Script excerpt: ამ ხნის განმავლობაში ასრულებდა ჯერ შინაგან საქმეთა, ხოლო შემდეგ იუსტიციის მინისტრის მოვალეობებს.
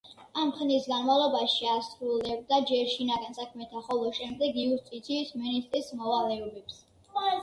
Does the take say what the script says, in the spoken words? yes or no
yes